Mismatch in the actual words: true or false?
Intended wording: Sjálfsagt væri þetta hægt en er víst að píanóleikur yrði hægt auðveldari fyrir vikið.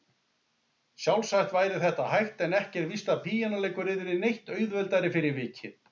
true